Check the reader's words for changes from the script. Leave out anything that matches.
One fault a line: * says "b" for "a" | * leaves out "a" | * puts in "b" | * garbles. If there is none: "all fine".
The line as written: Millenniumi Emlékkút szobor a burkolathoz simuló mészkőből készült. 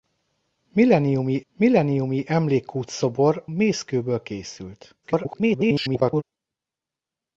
* puts in "millenniumi"
* leaves out "a burkolathoz simuló"
* garbles